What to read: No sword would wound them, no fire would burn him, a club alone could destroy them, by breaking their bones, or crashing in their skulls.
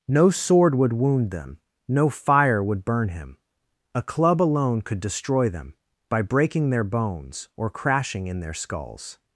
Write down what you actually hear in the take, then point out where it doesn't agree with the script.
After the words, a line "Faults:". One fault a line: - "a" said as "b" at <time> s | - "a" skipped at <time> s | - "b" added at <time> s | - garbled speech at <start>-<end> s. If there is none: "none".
No sword would wound them, no fire would burn him, a club alone could destroy them, by breaking their bones, or crashing in their skulls.
Faults:
none